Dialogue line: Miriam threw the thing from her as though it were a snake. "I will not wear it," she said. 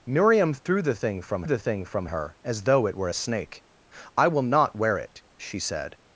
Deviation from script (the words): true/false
true